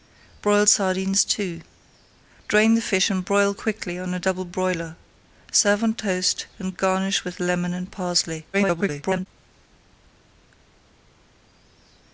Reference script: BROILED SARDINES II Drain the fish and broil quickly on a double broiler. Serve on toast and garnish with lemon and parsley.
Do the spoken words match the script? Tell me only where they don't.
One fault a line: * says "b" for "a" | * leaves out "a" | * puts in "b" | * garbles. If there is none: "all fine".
* garbles